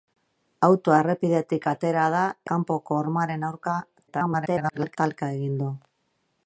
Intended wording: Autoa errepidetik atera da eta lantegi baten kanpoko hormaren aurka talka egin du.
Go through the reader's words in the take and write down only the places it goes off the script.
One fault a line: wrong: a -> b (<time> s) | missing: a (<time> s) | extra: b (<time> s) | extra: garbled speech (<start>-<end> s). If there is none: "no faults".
missing: eta lantegi baten (2.2 s)
extra: garbled speech (4.1-5.0 s)